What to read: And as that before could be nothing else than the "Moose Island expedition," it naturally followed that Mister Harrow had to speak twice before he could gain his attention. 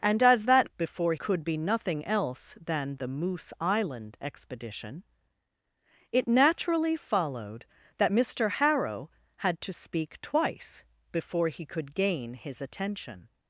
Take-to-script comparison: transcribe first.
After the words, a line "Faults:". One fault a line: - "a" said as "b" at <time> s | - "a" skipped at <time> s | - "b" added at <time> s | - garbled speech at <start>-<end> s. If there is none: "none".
And as that before could be nothing else than the "Moose Island expedition," it naturally followed that Mister Harrow had to speak twice before he could gain his attention.
Faults:
none